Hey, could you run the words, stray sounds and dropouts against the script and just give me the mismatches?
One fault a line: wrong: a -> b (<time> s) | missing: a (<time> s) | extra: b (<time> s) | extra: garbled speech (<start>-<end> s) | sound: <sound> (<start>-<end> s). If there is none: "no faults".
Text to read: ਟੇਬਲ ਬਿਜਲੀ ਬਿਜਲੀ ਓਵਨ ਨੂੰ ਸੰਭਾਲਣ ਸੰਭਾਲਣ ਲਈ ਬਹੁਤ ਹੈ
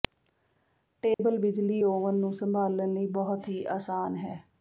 sound: dropout (1.1-1.2 s)
missing: ਬਿਜਲੀ (1.8 s)
missing: ਸੰਭਾਲਣ (2.9 s)
extra: ਹੀ ਆਸਾਨ (3.5 s)